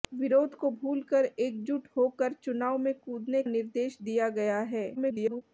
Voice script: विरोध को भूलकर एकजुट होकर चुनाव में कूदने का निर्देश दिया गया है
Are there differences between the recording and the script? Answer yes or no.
yes